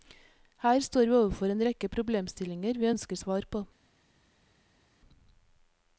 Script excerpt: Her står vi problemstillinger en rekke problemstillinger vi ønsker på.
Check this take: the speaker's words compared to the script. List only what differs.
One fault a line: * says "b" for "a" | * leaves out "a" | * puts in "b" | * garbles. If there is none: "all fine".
* says "overfor" for "problemstillinger"
* puts in "svar"